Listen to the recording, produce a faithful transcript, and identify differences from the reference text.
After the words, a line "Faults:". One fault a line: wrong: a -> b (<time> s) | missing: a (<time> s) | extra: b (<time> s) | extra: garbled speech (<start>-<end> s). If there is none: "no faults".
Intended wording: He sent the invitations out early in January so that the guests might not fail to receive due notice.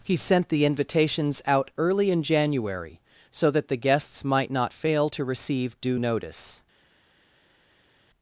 He sent the invitations out early in January so that the guests might not fail to receive due notice.
Faults:
no faults